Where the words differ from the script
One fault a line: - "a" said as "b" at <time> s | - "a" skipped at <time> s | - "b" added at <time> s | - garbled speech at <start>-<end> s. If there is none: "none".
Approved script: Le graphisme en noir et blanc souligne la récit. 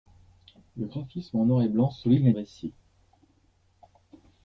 none